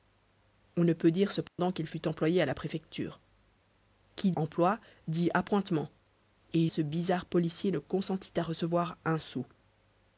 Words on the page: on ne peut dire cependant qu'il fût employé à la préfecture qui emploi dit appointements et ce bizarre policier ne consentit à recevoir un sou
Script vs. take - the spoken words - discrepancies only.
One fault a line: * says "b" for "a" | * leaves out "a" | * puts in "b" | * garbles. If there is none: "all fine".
all fine